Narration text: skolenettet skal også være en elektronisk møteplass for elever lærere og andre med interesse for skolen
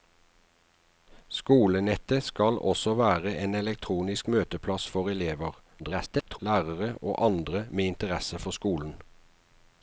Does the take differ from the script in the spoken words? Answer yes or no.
yes